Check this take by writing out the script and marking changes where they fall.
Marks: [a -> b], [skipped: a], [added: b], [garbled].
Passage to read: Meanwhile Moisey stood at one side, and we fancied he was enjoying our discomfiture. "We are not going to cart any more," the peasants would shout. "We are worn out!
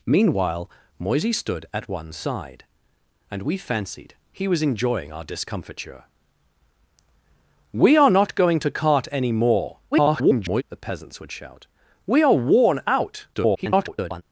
Meanwhile Moisey stood at one side, and we fancied he was enjoying our discomfiture. "We are not going to cart any more," [garbled] the peasants would shout. "We are worn out! [garbled]